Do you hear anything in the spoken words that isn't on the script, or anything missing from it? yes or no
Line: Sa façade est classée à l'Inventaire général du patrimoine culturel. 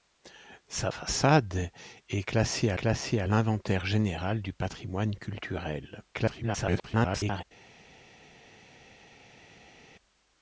yes